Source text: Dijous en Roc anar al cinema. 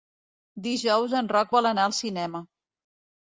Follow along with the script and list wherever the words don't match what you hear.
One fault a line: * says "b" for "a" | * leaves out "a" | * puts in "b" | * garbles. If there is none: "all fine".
* puts in "vol"